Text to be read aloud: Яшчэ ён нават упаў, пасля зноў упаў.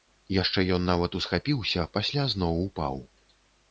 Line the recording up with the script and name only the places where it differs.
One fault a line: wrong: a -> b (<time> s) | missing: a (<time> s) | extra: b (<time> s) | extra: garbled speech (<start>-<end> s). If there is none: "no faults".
wrong: упаў -> усхапіўся (1.2 s)